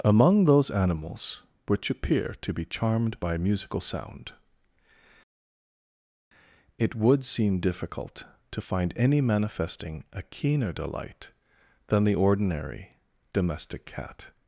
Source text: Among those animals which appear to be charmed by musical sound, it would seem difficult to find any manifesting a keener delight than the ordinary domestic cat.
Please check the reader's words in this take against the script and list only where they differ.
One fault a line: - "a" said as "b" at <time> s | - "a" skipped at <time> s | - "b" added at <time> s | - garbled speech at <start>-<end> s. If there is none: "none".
none